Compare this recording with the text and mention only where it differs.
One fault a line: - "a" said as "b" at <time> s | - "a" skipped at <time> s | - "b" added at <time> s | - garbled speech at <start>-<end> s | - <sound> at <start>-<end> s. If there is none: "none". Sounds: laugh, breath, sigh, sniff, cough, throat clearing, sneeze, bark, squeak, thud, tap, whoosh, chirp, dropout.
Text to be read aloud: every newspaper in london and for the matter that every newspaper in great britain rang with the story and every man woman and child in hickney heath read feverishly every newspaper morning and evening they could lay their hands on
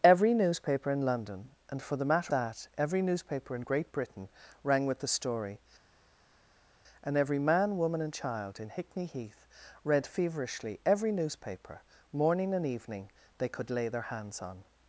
none